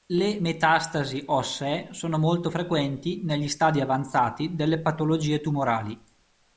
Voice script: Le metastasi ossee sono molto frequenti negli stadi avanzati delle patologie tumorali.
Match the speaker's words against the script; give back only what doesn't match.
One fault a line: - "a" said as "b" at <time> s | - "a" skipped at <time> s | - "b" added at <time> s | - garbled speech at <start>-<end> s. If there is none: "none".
none